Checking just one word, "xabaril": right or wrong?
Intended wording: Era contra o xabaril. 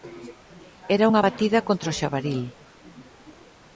right